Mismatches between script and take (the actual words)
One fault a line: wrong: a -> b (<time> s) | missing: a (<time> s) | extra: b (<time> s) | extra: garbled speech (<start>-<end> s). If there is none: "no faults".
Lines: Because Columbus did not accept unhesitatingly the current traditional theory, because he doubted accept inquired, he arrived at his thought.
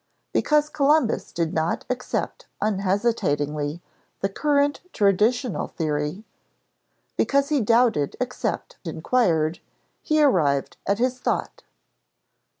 no faults